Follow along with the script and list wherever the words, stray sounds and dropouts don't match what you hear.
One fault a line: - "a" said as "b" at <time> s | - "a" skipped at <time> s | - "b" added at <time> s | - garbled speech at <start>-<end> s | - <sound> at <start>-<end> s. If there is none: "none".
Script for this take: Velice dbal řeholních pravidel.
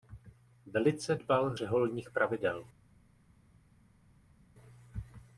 none